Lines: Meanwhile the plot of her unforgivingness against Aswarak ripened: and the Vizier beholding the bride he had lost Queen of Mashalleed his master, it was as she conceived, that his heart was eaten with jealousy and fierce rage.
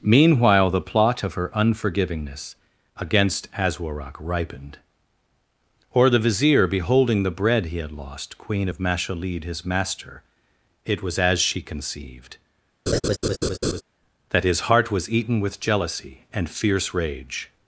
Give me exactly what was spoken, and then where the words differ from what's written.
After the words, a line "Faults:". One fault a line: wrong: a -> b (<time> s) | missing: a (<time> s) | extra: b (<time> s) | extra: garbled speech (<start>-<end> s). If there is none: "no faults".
Meanwhile the plot of her unforgivingness against Aswarak ripened: or the Vizier beholding the bread he had lost Queen of Mashalleed his master, it was as she conceived, that his heart was eaten with jealousy and fierce rage.
Faults:
wrong: and -> or (5.9 s)
wrong: bride -> bread (7.3 s)